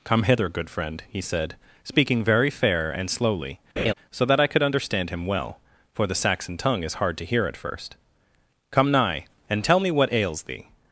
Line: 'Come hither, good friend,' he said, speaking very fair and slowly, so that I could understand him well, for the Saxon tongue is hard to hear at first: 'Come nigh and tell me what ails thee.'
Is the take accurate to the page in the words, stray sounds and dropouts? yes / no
no